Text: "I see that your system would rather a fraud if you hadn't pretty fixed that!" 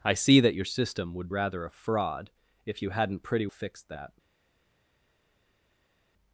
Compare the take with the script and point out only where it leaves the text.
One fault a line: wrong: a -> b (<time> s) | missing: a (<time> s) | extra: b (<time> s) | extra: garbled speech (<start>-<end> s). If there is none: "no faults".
no faults